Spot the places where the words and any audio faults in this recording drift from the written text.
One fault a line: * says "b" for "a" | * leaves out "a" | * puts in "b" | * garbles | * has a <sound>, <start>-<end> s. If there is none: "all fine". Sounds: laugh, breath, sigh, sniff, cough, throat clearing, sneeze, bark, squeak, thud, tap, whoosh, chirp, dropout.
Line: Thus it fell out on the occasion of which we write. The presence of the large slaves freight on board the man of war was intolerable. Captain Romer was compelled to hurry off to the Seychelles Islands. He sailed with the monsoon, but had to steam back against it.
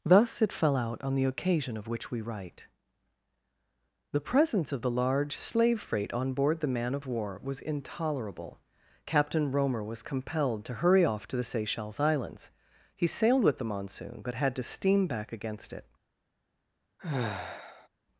* says "slave" for "slaves"
* has a sigh, 17.0-17.9 s